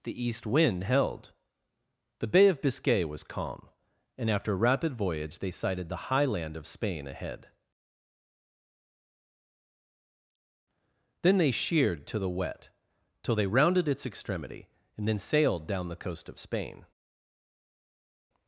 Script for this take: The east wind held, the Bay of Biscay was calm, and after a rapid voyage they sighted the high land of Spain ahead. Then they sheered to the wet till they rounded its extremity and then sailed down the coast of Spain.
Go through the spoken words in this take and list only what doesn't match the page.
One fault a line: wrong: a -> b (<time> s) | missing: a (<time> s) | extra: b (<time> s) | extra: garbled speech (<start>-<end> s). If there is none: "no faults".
no faults